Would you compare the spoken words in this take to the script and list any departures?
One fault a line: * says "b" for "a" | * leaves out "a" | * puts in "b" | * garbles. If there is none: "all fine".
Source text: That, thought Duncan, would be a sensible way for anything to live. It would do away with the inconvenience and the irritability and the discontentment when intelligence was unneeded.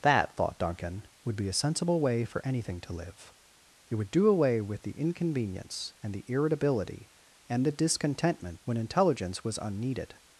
all fine